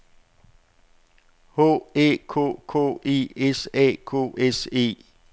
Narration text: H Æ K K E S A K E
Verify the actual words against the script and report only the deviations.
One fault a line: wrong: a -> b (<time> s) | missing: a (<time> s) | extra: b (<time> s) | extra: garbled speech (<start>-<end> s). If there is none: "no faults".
extra: S (4.4 s)